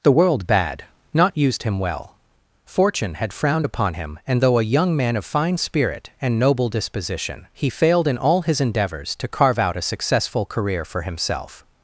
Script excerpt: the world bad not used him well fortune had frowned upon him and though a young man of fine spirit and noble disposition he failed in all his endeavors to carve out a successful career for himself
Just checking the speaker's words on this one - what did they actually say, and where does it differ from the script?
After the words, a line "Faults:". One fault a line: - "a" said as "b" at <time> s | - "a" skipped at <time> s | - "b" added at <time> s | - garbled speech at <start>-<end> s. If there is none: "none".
the world bad not used him well fortune had frowned upon him and though a young man of fine spirit and noble disposition he failed in all his endeavors to carve out a successful career for himself
Faults:
none